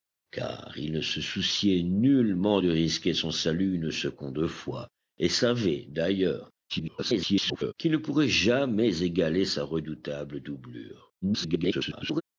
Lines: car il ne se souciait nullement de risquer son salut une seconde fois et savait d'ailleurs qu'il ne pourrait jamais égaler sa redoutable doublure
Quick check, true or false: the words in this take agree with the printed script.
false